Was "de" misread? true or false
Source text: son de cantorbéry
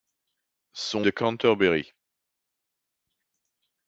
false